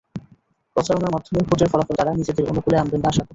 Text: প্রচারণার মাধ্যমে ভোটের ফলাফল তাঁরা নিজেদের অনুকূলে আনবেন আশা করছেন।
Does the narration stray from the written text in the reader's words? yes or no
no